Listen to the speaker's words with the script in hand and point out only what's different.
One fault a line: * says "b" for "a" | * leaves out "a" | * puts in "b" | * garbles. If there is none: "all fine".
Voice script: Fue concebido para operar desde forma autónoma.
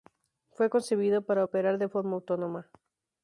* says "de" for "desde"